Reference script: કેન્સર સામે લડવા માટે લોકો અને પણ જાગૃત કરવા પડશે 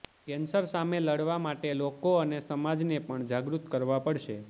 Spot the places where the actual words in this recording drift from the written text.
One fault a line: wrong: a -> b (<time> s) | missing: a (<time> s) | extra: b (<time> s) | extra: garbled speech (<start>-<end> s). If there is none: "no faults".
extra: સમાજને (2.4 s)